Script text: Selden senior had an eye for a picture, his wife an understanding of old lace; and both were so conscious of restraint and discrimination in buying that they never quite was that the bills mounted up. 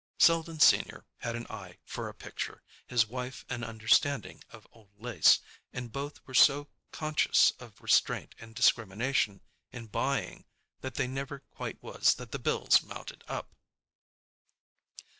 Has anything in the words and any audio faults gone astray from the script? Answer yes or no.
no